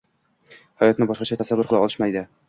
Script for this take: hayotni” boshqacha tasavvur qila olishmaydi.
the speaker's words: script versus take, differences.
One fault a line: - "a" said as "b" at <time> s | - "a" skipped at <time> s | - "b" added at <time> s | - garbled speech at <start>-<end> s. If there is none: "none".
none